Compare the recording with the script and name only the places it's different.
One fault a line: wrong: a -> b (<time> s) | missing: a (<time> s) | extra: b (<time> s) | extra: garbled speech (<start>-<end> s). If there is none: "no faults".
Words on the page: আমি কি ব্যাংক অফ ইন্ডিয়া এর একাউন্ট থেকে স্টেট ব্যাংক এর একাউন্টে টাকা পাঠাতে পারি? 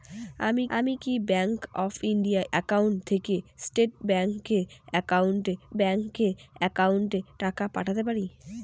extra: আমি (0.8 s)
missing: এর (2.4 s)
extra: ব্যাংক এর একাউন্টে (5.8 s)